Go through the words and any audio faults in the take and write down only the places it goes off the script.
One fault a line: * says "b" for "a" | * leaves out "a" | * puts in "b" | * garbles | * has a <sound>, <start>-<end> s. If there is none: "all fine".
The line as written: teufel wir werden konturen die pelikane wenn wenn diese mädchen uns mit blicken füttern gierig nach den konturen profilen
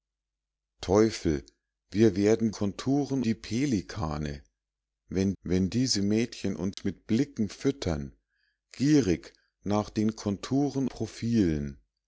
* has a dropout, 6.7-6.8 s